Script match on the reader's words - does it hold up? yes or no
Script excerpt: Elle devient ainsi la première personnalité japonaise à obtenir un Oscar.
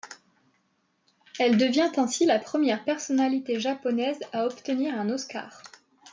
yes